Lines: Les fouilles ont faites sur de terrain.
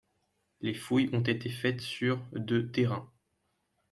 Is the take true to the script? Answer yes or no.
no